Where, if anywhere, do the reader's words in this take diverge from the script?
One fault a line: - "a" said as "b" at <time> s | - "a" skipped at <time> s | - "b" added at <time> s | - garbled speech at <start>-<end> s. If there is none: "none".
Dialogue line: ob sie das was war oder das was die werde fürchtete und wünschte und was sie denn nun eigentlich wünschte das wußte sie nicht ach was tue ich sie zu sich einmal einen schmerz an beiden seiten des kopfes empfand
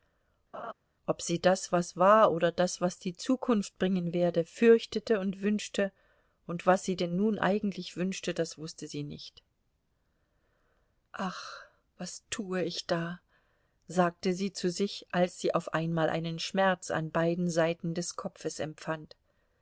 - "zukunft bringen" added at 3.2 s
- "da sagte" added at 12.8 s
- "als sie auf" added at 15.1 s